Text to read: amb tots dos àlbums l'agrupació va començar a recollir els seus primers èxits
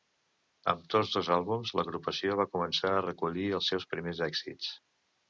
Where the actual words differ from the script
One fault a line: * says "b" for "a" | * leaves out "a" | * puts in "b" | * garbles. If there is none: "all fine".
all fine